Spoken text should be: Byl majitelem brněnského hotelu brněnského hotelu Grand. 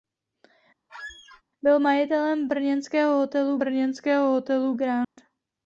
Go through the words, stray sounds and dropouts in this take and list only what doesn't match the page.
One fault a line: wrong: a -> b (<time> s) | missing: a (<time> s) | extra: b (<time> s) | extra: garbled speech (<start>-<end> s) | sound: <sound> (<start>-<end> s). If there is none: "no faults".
sound: squeak (0.9-1.4 s)
sound: dropout (5.0-5.2 s)